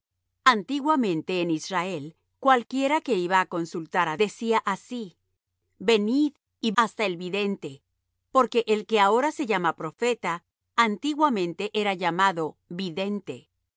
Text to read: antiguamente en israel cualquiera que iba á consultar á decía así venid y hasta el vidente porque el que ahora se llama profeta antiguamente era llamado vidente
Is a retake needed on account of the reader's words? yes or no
no